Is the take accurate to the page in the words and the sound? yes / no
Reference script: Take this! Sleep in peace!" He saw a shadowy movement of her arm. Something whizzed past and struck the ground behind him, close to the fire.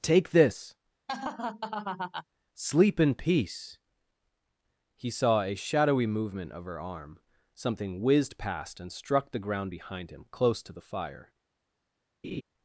no